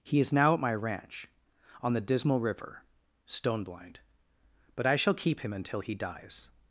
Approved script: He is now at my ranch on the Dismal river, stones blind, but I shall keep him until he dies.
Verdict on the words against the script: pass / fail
fail